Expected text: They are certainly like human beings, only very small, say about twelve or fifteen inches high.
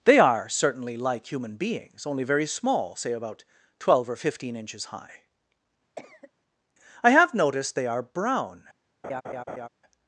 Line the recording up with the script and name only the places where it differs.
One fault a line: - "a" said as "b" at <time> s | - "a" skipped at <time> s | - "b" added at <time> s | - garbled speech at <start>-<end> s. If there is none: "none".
- "I have noticed they are brown" added at 7.0 s